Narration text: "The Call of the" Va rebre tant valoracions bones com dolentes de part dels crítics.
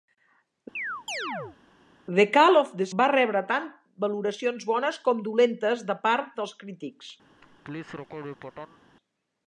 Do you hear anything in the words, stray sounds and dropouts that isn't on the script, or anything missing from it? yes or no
yes